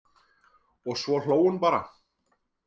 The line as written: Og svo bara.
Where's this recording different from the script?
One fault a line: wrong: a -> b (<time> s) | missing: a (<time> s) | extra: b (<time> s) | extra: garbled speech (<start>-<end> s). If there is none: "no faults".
extra: hló hún (1.2 s)